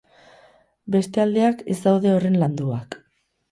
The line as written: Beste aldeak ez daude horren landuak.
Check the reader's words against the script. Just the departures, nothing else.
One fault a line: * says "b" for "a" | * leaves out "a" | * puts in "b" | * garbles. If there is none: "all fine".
all fine